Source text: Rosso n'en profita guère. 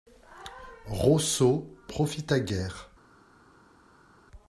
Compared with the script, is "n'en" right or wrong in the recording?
wrong